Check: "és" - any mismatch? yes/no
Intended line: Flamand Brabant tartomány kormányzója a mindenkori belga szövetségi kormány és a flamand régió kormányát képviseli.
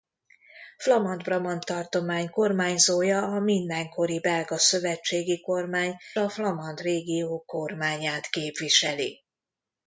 yes